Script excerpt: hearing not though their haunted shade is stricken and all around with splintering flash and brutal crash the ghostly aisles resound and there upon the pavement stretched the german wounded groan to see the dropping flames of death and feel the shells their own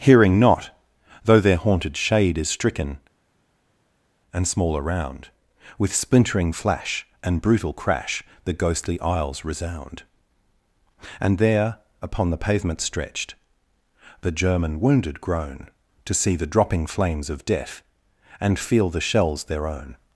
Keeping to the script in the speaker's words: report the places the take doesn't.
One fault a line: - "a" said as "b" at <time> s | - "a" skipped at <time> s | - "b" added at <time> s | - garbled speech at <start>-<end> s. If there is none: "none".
- "all" said as "small" at 4.5 s